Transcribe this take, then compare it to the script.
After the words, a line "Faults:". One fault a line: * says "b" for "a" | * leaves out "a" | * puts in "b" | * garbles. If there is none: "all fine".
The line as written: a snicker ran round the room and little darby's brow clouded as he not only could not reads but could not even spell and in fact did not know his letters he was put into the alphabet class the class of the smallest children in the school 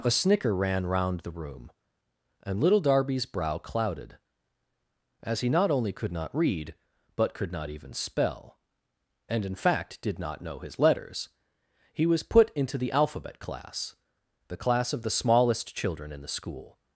a snicker ran round the room and little darby's brow clouded as he not only could not read but could not even spell and in fact did not know his letters he was put into the alphabet class the class of the smallest children in the school
Faults:
* says "read" for "reads"